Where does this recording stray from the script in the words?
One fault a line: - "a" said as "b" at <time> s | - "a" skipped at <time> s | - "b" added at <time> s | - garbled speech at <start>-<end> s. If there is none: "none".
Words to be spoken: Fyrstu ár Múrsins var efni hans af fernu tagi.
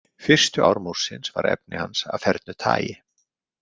none